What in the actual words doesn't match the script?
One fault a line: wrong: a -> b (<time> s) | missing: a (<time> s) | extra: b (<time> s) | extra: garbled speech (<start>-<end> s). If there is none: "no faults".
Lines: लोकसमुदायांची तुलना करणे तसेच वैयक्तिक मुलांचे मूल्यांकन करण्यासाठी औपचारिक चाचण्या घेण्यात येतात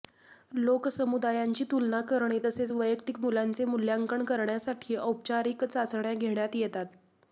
no faults